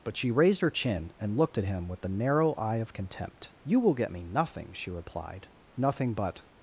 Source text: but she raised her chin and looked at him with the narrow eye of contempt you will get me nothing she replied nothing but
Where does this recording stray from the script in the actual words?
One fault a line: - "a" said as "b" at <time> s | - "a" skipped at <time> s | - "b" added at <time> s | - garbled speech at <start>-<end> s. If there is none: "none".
none